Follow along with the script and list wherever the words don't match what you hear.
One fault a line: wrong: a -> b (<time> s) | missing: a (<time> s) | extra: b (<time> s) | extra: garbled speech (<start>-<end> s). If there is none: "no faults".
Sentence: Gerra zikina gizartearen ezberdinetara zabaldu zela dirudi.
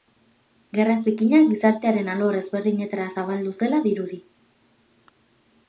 extra: alor (2.1 s)